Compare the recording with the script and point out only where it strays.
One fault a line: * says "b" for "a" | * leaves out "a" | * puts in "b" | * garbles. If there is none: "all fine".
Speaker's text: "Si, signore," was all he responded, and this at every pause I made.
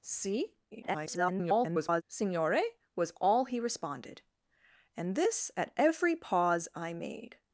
* garbles